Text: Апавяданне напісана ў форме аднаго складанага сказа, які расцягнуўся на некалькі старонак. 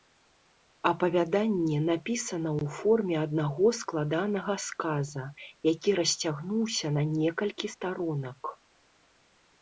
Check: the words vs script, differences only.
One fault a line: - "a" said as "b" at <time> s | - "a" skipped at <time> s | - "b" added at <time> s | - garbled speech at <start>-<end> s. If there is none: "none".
none